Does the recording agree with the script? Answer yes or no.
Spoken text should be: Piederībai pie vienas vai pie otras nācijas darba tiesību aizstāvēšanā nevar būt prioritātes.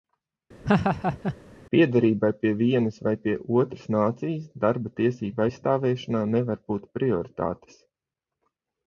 yes